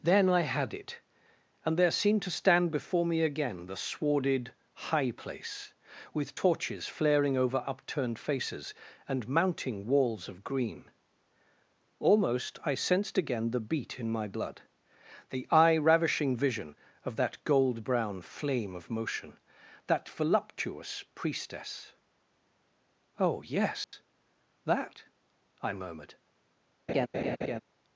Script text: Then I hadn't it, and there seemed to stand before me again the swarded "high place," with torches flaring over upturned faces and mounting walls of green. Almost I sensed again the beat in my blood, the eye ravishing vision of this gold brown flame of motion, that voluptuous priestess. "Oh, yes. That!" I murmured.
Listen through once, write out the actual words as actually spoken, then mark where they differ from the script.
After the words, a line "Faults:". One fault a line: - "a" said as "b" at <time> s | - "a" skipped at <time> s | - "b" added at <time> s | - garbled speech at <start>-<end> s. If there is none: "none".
Then I had it, and there seemed to stand before me again the swarded "high place," with torches flaring over upturned faces and mounting walls of green. Almost I sensed again the beat in my blood, the eye ravishing vision of that gold brown flame of motion, that voluptuous priestess. "Oh, yes. That!" I murmured.
Faults:
- "hadn't" said as "had" at 0.4 s
- "this" said as "that" at 17.2 s